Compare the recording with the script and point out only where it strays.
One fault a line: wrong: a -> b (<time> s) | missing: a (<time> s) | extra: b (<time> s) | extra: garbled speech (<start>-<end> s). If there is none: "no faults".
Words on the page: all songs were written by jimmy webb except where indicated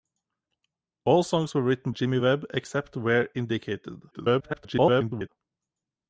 missing: by (1.9 s)
extra: garbled speech (4.1-5.3 s)